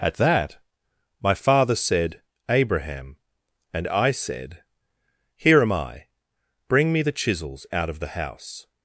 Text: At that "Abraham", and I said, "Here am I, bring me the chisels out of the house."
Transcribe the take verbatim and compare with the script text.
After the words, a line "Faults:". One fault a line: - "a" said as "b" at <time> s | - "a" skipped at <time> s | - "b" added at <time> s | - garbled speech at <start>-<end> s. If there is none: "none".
At that my father said, "Abraham", and I said, "Here am I, bring me the chisels out of the house."
Faults:
- "my father said" added at 1.2 s